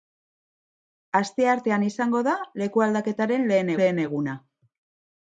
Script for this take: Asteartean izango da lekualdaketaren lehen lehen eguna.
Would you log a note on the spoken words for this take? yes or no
no